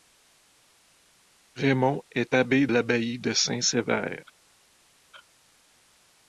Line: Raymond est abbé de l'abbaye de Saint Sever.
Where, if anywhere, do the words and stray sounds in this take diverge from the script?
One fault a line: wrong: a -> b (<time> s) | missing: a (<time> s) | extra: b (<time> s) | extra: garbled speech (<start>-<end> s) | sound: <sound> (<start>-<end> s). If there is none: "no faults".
missing: de (2.7 s)